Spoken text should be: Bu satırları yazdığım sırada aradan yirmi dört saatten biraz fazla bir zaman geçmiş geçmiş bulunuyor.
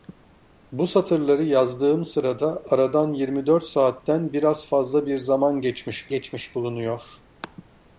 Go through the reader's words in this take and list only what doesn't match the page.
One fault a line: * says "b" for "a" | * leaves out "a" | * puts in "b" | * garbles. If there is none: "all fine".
all fine